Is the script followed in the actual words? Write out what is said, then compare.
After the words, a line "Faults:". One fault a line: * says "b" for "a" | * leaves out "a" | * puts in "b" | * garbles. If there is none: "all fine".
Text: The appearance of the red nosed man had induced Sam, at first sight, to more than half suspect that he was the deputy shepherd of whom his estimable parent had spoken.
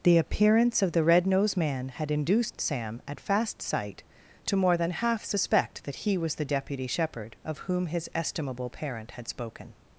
The appearance of the red nosed man had induced Sam, at fast sight, to more than half suspect that he was the deputy shepherd of whom his estimable parent had spoken.
Faults:
* says "fast" for "first"